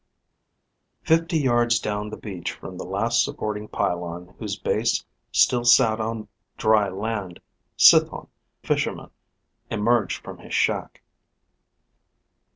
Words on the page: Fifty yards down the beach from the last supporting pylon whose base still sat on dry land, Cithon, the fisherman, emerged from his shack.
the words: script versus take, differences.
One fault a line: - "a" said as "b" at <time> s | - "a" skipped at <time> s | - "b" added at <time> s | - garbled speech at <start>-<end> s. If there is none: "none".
- "the" skipped at 8.3 s